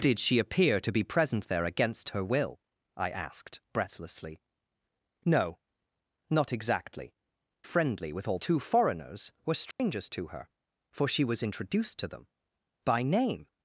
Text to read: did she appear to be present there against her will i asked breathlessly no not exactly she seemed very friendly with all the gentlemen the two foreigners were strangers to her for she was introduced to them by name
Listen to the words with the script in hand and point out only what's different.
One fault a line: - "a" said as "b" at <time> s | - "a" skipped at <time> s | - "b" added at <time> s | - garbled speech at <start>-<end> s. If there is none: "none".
- "she seemed very" skipped at 7.1 s
- "the gentlemen the" skipped at 8.4 s